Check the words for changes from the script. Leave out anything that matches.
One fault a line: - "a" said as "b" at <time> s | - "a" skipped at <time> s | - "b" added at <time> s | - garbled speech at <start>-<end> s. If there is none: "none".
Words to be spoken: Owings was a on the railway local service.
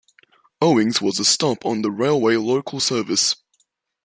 - "stop" added at 1.2 s